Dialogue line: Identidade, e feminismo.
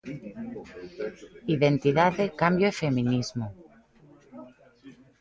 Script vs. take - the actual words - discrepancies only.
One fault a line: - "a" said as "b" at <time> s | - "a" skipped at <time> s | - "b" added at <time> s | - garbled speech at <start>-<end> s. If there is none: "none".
- "cambio" added at 2.4 s